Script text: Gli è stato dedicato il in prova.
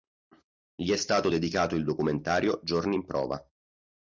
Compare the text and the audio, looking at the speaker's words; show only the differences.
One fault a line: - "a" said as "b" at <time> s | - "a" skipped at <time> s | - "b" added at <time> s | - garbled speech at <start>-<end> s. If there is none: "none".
- "documentario Giorni" added at 1.8 s